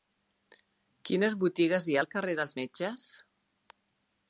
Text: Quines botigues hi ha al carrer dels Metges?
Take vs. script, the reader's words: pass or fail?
pass